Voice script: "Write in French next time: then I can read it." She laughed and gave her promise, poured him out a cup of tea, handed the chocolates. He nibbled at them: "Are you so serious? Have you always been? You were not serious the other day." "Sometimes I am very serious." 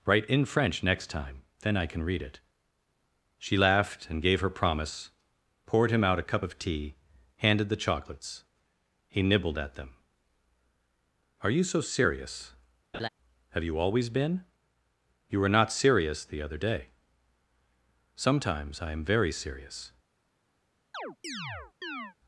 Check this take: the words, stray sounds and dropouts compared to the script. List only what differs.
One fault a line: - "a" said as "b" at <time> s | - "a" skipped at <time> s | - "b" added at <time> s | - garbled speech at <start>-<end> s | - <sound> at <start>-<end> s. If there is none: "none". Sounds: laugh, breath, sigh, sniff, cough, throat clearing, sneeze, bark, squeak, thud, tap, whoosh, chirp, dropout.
- laugh at 12.9-13.1 s
- chirp at 20.9-22.1 s